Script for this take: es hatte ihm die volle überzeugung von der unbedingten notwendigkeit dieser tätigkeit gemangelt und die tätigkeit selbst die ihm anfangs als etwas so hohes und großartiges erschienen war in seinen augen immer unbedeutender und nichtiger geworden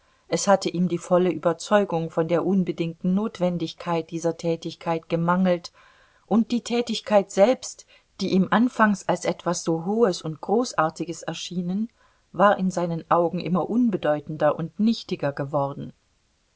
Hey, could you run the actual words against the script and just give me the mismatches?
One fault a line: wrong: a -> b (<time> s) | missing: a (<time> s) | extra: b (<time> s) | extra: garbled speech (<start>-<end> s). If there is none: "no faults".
no faults